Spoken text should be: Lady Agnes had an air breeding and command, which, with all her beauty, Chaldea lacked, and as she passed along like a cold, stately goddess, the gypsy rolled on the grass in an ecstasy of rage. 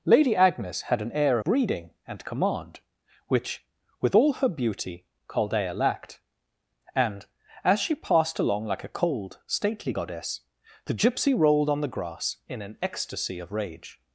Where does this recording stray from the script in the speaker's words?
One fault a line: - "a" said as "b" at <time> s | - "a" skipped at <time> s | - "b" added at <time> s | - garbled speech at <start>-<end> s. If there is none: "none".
none